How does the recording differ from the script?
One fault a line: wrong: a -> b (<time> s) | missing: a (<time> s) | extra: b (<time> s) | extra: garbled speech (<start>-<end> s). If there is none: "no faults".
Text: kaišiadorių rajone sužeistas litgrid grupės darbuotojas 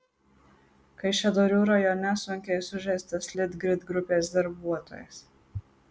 extra: sunkiai (2.2 s)